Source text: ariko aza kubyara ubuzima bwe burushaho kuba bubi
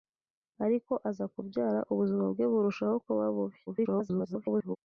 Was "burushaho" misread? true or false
false